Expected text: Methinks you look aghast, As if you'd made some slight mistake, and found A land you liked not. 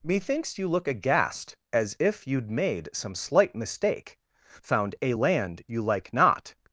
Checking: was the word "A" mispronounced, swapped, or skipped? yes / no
no